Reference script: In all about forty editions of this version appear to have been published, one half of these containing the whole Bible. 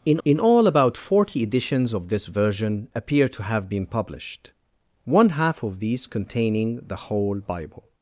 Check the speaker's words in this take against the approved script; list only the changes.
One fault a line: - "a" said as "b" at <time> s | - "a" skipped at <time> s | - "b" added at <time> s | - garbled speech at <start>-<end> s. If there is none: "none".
- "in" added at 0.2 s